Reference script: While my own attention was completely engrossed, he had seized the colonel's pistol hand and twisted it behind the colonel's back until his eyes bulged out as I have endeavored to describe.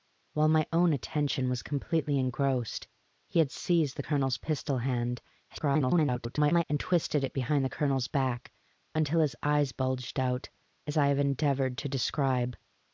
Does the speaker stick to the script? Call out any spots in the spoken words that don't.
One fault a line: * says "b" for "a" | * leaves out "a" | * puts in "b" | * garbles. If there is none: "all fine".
* garbles